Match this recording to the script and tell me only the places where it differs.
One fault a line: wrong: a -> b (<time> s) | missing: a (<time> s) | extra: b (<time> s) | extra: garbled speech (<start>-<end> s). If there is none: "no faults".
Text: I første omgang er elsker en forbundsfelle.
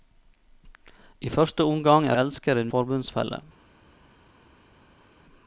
no faults